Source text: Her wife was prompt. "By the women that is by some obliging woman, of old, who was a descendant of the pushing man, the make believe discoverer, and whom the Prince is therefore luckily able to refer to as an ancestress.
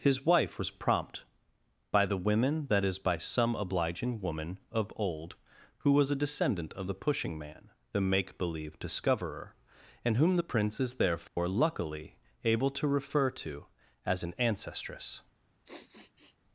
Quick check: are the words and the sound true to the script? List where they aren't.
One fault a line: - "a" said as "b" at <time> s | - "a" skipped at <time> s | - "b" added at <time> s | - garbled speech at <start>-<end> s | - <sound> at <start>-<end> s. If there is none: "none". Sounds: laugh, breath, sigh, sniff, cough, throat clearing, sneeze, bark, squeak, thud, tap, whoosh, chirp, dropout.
- "Her" said as "His" at 0.0 s
- dropout at 11.3-11.4 s
- sniff at 15.6-16.4 s